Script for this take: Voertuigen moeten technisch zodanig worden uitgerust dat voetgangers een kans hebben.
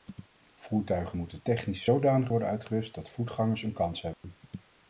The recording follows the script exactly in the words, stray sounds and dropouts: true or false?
false